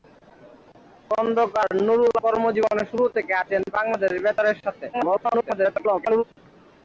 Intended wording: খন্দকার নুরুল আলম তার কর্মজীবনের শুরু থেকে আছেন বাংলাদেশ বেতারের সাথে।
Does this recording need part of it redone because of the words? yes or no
yes